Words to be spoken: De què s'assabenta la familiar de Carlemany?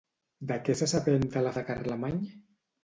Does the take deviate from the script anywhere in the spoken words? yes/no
yes